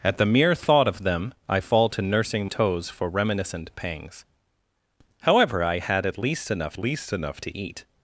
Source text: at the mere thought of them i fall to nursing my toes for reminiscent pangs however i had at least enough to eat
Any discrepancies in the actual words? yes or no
yes